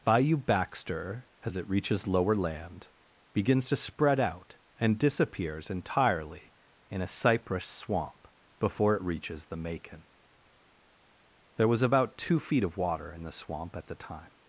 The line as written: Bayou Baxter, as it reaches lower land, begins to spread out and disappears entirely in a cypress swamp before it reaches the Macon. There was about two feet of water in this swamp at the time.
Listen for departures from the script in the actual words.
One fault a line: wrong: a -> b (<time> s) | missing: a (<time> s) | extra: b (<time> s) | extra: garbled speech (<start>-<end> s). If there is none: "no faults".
wrong: this -> the (13.2 s)